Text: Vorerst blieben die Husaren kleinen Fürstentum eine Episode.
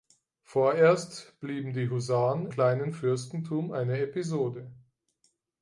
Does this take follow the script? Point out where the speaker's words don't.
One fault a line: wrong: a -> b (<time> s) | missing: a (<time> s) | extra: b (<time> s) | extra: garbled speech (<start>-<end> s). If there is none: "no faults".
no faults